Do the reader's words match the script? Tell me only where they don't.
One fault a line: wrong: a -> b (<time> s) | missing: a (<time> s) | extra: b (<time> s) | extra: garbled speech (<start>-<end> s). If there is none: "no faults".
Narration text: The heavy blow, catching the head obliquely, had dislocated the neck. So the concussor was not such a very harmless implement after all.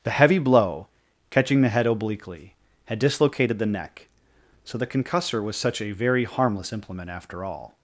missing: not (5.6 s)